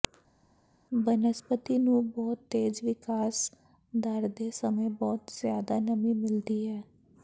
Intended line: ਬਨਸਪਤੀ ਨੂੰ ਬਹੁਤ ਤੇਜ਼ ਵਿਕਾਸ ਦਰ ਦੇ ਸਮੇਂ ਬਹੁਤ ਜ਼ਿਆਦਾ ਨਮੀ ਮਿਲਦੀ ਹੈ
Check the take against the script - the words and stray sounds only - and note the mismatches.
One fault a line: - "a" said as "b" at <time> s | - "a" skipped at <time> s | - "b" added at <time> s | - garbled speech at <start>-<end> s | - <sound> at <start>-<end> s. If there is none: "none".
none